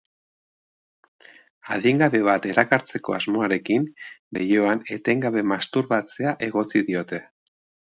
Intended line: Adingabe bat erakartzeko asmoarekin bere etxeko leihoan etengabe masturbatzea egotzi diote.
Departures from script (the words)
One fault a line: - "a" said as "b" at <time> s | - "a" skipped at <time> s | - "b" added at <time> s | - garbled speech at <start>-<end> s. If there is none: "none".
- "bere etxeko" skipped at 3.9 s